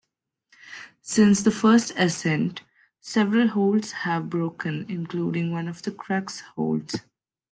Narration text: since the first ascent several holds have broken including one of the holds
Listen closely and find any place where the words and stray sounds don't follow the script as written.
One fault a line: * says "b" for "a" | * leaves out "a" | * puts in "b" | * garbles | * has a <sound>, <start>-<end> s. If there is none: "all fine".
* puts in "crux"